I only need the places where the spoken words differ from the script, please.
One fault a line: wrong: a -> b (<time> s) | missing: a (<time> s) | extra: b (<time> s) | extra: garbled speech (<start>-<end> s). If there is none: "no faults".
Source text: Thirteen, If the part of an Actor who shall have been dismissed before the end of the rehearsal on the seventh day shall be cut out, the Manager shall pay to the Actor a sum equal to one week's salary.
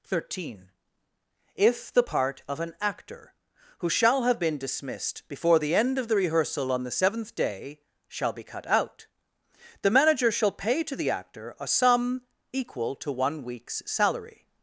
no faults